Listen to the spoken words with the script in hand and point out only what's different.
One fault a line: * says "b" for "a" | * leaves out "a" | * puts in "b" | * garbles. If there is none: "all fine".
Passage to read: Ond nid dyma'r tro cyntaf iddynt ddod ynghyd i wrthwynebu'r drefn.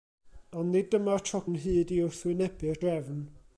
* leaves out "cyntaf iddynt ddod"